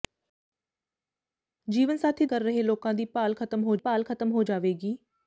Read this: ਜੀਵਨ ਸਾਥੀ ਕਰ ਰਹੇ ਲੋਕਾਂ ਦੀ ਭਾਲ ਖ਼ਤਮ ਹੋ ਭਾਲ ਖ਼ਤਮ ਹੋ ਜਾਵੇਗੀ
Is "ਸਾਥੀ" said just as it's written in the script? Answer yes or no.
yes